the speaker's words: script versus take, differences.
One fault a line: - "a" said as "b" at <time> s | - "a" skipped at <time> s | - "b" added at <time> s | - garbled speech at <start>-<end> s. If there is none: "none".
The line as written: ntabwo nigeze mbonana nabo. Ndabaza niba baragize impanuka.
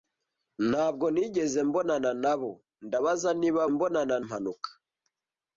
- "baragize" said as "mbonana" at 3.7 s